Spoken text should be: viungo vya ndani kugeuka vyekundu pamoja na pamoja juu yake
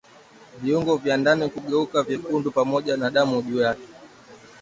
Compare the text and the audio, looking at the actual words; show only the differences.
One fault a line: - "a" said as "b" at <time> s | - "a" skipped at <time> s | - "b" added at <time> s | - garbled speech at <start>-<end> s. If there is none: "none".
- "pamoja" said as "damu" at 3.1 s